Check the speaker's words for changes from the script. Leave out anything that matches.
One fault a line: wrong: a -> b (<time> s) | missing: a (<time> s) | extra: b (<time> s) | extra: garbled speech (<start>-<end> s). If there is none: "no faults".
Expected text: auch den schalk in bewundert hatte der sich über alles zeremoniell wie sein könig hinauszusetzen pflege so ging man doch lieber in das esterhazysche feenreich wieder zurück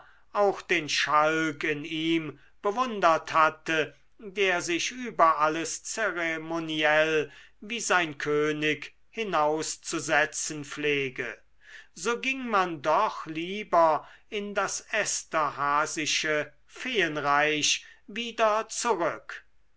extra: ihm (1.8 s)